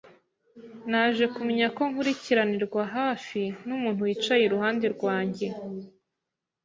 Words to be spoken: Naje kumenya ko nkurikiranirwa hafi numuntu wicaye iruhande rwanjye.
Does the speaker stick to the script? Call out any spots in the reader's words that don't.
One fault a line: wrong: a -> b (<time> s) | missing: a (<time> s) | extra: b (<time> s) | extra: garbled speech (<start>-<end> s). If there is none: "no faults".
no faults